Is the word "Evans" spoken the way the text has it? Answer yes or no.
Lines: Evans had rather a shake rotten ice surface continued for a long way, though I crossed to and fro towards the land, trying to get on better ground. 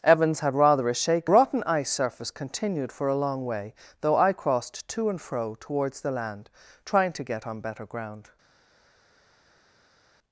yes